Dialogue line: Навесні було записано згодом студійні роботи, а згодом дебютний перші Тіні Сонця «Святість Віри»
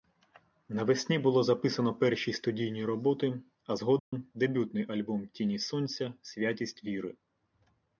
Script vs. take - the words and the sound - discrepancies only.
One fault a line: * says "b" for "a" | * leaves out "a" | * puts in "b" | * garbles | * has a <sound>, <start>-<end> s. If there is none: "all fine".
* says "перші" for "згодом"
* has a dropout, 4.0-4.1 s
* says "альбом" for "перші"